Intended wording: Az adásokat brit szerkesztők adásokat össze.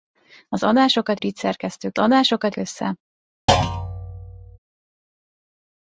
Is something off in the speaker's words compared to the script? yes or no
no